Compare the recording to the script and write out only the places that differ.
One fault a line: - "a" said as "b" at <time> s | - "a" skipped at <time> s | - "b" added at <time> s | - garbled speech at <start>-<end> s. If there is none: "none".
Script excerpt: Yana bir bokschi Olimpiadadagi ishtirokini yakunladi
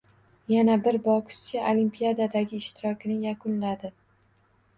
none